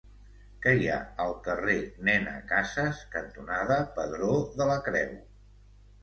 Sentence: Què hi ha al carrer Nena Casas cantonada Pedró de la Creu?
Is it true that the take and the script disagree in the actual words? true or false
false